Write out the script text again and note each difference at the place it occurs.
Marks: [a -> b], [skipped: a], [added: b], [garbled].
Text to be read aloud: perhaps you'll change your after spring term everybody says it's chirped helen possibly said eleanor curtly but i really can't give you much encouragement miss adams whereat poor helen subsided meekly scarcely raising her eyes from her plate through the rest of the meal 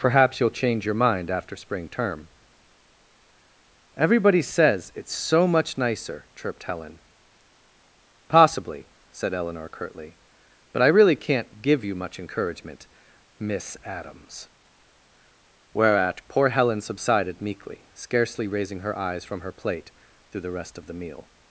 perhaps you'll change your [added: mind] after spring term everybody says it's [added: so much nicer] chirped helen possibly said eleanor curtly but i really can't give you much encouragement miss adams whereat poor helen subsided meekly scarcely raising her eyes from her plate through the rest of the meal